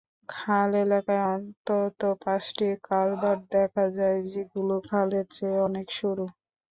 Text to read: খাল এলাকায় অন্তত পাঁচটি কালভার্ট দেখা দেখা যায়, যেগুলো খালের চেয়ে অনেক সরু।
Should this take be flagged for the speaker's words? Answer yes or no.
yes